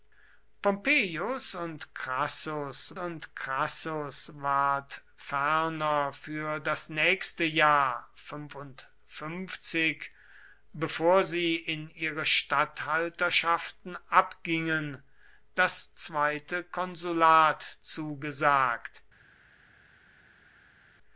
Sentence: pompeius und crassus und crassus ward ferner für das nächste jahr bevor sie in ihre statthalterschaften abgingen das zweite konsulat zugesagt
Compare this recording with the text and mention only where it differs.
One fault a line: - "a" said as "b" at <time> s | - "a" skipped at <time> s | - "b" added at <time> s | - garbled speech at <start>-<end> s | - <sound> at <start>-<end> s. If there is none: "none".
none